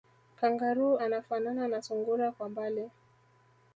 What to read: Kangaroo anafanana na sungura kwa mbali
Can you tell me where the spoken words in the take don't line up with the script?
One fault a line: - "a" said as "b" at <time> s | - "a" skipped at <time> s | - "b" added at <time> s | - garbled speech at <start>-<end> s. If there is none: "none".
none